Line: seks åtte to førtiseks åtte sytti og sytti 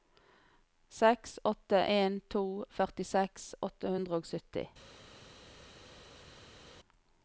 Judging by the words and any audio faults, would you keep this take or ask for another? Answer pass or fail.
fail